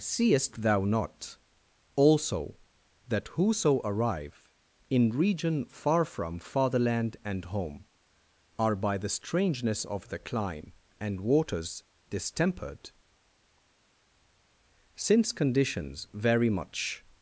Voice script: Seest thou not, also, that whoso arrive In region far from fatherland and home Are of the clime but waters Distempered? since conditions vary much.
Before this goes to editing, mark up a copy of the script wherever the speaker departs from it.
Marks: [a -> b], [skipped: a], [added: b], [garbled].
Seest thou not, also, that whoso arrive In region far from fatherland and home Are [added: by the strangeness] of the clime [but -> and] waters Distempered? since conditions vary much.